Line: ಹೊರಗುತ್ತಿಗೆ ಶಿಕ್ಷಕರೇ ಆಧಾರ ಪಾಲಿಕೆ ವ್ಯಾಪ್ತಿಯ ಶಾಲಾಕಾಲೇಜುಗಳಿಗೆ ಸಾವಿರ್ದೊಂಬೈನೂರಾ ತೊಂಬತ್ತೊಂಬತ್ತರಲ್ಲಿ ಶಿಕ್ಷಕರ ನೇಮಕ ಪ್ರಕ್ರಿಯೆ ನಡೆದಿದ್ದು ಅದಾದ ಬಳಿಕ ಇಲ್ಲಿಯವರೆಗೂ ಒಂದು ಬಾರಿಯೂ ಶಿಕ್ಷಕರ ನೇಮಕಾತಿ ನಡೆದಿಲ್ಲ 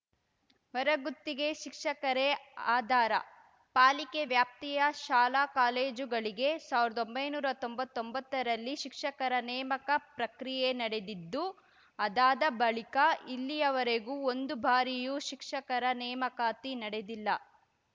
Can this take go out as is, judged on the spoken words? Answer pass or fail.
pass